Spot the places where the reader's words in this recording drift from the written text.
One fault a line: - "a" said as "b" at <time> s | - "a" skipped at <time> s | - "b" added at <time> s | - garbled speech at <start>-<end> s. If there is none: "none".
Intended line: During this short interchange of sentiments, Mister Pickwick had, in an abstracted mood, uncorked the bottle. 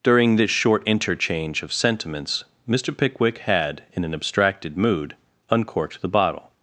none